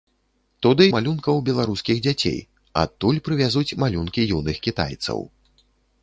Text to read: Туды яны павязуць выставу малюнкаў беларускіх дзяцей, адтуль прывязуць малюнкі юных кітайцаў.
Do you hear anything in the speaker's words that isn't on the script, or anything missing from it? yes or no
yes